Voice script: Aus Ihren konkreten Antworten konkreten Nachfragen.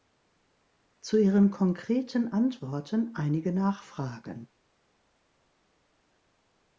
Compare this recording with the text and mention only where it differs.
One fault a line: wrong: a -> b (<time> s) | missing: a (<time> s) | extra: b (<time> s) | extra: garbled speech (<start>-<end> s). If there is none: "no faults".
wrong: Aus -> Zu (1.0 s)
wrong: konkreten -> einige (3.1 s)